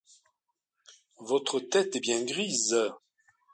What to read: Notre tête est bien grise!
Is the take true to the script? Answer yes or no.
no